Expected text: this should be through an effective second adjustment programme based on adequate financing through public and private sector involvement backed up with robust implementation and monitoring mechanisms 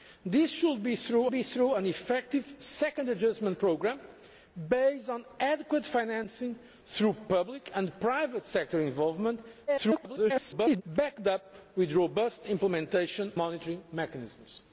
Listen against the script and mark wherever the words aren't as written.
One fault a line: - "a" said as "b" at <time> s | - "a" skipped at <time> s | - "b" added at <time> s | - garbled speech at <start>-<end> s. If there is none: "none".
- "be through" added at 1.3 s
- garbled speech at 9.7-10.8 s
- "and" skipped at 13.3 s